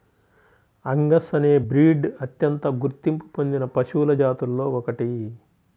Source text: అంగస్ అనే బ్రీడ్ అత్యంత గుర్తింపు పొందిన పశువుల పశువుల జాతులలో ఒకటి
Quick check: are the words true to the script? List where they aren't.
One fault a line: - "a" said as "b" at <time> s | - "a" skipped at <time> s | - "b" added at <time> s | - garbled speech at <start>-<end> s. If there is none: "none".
- "పశువుల" skipped at 4.1 s